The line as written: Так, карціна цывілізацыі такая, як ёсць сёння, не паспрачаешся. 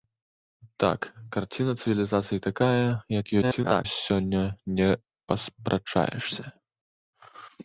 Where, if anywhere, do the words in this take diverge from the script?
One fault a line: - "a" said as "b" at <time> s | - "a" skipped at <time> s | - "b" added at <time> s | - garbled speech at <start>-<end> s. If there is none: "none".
- garbled speech at 3.4-3.9 s